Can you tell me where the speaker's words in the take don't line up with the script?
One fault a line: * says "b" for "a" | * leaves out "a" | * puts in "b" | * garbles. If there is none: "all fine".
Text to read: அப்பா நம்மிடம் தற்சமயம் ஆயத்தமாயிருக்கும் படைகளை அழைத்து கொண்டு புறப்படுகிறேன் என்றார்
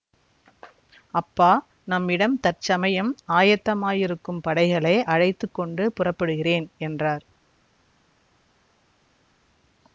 all fine